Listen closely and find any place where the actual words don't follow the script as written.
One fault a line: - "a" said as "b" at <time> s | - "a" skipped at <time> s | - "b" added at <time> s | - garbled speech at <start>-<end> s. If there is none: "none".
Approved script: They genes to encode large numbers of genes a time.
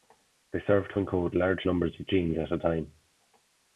- "genes" said as "serve" at 0.7 s
- "at" added at 2.4 s